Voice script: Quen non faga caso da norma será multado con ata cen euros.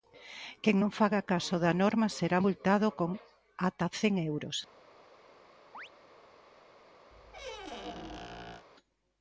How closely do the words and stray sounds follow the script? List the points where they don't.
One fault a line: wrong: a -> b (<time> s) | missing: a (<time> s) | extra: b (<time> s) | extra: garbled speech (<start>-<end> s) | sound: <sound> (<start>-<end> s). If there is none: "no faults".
sound: chirp (5.7-5.9 s)
sound: squeak (7.1-8.7 s)